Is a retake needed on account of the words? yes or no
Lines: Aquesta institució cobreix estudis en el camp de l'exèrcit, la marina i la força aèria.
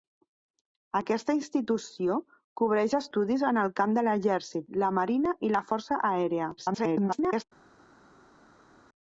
yes